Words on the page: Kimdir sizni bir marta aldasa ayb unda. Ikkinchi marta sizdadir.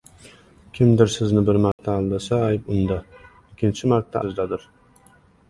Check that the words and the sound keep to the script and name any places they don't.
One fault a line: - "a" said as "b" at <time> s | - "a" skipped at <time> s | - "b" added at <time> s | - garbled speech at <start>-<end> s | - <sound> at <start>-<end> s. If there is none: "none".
- dropout at 1.7-1.8 s